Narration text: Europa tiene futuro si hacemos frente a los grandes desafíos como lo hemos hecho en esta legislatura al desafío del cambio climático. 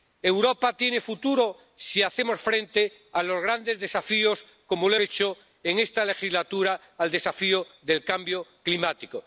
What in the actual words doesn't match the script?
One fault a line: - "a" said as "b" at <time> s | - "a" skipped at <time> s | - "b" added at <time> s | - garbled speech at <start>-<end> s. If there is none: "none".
- "hemos" skipped at 5.0 s